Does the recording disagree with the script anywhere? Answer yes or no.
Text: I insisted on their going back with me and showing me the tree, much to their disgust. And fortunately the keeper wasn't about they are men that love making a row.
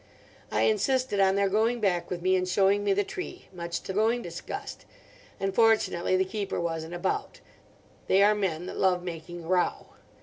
yes